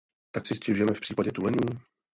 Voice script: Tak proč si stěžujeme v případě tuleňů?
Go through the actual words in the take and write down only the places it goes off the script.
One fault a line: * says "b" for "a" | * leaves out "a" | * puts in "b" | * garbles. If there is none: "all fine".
* leaves out "proč"